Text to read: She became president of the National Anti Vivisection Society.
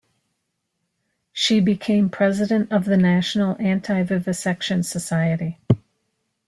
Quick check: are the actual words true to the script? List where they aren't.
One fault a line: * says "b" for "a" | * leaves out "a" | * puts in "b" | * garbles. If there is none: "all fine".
all fine